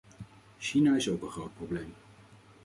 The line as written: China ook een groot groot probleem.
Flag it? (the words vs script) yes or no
yes